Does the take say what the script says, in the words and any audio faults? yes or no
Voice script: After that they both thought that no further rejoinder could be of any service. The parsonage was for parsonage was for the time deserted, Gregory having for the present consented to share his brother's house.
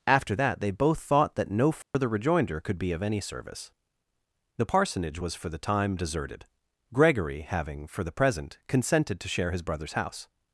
no